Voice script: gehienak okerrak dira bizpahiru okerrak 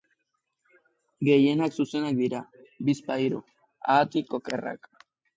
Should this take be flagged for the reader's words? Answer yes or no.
yes